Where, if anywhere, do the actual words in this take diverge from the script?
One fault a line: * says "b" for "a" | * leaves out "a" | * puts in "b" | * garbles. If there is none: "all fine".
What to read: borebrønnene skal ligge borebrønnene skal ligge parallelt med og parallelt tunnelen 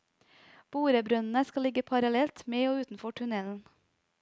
* leaves out "borebrønnene skal ligge"
* says "utenfor" for "parallelt"